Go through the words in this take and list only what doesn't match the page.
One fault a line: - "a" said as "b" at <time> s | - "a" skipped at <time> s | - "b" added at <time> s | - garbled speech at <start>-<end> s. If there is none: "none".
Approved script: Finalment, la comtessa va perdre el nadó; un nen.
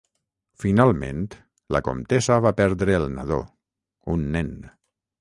none